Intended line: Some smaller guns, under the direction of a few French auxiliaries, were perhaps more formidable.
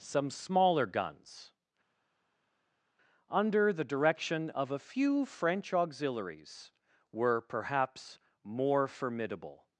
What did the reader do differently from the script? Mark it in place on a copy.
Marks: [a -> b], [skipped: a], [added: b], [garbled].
Some smaller guns, under the direction of a few French auxiliaries, were perhaps more formidable.